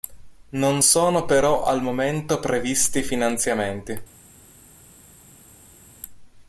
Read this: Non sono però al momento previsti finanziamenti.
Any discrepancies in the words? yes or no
no